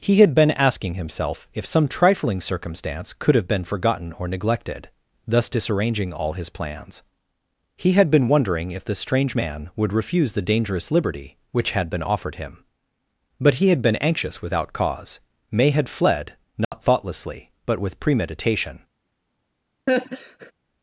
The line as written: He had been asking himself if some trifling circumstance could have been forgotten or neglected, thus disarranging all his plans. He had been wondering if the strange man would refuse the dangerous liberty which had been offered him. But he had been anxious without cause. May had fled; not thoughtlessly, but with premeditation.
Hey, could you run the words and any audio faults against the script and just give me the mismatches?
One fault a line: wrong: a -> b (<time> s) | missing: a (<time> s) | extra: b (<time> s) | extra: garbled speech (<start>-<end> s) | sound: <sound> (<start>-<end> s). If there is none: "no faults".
sound: dropout (16.6-16.7 s)
sound: laugh (19.9-20.5 s)